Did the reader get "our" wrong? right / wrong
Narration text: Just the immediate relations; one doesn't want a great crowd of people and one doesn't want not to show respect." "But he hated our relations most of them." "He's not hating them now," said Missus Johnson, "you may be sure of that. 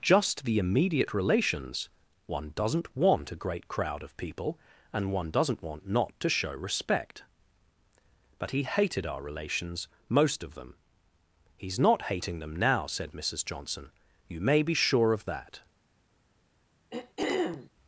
right